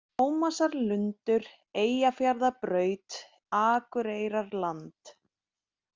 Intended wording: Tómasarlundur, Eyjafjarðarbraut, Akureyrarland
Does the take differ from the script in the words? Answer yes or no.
no